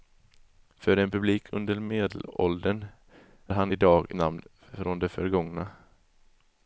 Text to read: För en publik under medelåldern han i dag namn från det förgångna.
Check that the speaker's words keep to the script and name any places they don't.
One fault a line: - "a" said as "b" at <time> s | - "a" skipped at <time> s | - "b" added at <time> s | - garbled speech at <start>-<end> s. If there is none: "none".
none